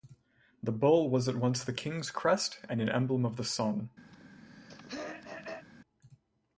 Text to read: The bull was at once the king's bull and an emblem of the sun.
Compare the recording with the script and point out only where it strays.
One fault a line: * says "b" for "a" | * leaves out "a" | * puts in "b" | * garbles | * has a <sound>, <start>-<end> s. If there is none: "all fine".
* says "crest" for "bull"
* has a throat clearing, 4.1-5.7 s